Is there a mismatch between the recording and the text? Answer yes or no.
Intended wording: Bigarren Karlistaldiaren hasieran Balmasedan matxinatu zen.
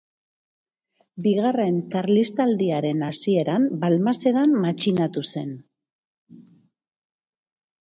no